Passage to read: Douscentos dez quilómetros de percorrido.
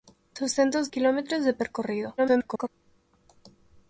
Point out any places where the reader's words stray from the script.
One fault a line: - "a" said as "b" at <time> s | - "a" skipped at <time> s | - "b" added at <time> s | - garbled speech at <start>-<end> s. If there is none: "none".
- "dez" skipped at 0.9 s
- garbled speech at 2.2-2.7 s